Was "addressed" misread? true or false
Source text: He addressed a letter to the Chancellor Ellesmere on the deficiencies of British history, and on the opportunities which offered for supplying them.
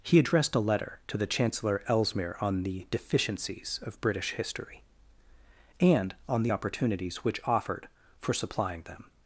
false